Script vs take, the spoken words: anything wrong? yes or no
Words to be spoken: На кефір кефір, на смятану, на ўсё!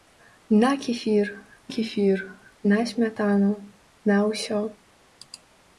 no